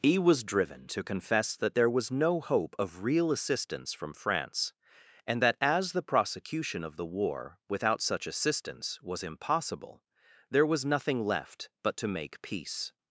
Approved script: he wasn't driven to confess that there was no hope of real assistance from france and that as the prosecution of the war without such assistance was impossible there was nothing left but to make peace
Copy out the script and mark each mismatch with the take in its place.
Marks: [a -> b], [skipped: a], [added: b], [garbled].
he [wasn't -> was] driven to confess that there was no hope of real assistance from france and that as the prosecution of the war without such assistance was impossible there was nothing left but to make peace